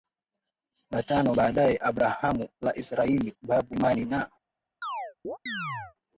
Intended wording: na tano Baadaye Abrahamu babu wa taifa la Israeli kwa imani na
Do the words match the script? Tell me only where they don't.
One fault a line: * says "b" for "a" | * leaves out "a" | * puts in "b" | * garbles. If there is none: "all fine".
* leaves out "babu wa taifa"
* says "babu" for "kwa"